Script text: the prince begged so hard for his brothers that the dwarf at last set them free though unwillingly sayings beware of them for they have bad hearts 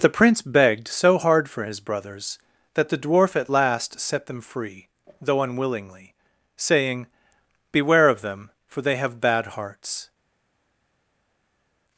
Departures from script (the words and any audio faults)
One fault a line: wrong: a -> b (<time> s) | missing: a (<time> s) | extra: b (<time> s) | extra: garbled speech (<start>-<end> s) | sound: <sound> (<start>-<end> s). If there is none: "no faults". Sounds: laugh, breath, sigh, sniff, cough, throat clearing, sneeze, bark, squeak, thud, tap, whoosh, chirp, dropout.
wrong: sayings -> saying (6.5 s)